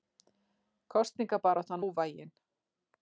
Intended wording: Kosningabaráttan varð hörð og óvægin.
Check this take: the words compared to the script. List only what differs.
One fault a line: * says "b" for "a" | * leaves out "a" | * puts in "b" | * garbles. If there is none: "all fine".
* leaves out "varð hörð og"